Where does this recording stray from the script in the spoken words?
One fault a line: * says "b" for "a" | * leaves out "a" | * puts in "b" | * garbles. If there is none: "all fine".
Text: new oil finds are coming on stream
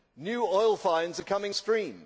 * leaves out "on"